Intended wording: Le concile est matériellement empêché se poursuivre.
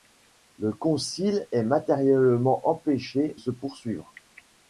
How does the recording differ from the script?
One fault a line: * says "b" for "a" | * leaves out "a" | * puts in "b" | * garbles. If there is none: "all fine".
all fine